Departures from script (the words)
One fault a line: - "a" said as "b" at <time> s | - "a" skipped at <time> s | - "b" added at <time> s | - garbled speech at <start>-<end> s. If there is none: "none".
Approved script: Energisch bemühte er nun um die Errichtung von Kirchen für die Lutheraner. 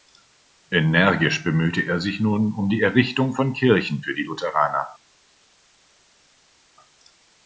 - "sich" added at 2.0 s